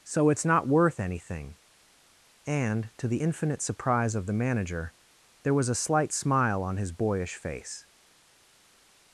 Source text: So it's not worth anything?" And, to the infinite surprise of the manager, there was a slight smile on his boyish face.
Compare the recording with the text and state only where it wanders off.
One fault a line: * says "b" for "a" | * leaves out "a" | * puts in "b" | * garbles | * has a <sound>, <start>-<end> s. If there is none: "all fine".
all fine